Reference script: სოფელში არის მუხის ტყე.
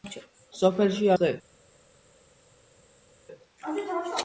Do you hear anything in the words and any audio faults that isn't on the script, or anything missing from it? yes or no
yes